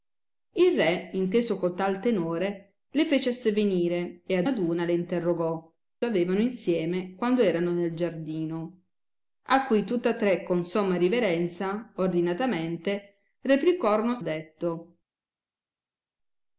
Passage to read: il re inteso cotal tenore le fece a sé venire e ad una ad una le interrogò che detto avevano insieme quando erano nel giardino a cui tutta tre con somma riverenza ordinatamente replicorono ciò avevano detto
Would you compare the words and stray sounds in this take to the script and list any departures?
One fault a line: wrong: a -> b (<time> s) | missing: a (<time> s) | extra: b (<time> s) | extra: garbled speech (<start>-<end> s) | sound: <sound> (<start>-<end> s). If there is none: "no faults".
missing: una (4.5 s)
missing: che detto (5.7 s)
missing: ciò avevano (14.2 s)